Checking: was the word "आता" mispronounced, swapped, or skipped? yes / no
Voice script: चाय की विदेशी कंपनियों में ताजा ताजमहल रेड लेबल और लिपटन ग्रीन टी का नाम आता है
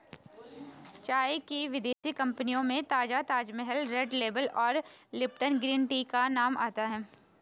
no